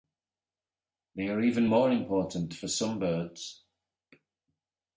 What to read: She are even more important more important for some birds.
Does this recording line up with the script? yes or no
no